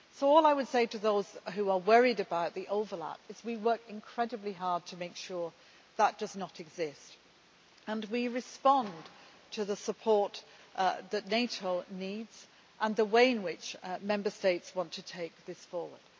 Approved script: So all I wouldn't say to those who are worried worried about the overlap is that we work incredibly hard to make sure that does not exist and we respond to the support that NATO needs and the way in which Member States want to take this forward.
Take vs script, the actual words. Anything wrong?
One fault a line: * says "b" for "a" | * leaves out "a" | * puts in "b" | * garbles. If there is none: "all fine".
* says "would" for "wouldn't"
* leaves out "worried"